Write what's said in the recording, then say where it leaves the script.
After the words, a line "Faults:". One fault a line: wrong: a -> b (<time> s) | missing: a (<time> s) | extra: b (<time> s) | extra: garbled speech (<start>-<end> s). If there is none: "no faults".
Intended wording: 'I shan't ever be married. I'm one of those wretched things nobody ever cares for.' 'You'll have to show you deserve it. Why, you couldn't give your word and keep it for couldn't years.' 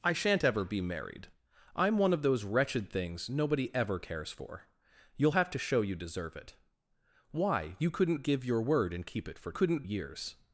'I shan't ever be married. I'm one of those wretched things nobody ever cares for.' 'You'll have to show you deserve it. Why, you couldn't give your word and keep it for couldn't years.'
Faults:
no faults